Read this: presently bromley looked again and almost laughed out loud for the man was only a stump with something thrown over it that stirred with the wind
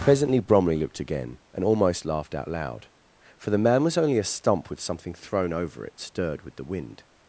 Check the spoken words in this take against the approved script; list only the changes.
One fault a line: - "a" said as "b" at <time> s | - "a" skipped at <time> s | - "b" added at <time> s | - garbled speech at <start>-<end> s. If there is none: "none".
- "that" skipped at 6.0 s